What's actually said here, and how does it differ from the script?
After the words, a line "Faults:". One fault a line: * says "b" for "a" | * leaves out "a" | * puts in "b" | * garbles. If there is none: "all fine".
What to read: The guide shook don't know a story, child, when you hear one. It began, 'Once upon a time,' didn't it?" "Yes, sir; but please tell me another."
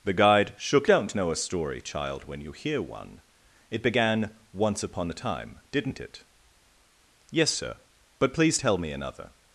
The guide shook don't know a story, child, when you hear one. It began, 'Once upon a time,' didn't it?" "Yes, sir; but please tell me another."
Faults:
all fine